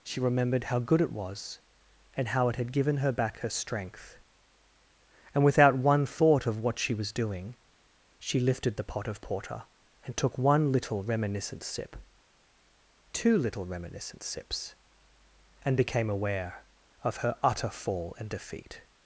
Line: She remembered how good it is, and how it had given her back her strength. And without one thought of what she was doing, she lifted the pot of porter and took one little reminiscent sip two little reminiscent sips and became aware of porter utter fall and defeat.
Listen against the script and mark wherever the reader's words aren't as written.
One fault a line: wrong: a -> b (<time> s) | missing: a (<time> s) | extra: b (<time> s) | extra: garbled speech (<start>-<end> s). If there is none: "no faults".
wrong: is -> was (1.1 s)
wrong: porter -> her (17.2 s)